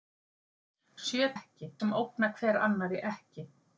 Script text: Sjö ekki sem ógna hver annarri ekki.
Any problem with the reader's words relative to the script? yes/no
no